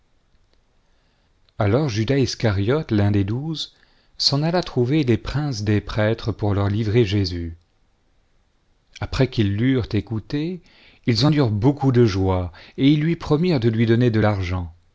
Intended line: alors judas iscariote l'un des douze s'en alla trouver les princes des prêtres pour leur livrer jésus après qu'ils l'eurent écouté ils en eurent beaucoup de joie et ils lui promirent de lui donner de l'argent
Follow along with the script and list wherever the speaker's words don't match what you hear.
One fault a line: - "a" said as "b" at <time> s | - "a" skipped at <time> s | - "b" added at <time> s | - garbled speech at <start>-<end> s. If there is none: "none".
none